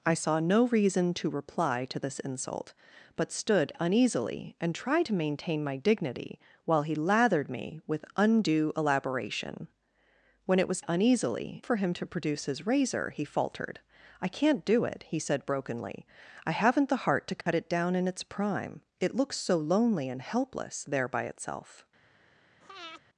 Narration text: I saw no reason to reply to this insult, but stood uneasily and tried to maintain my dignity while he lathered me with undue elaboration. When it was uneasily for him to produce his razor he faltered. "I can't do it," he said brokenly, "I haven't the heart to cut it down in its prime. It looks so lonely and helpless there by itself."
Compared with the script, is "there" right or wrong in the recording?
right